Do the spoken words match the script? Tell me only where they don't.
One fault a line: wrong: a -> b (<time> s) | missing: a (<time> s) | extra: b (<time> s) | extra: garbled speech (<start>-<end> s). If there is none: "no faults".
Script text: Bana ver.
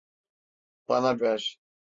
no faults